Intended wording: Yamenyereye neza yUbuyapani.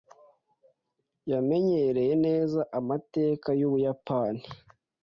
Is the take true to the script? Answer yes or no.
no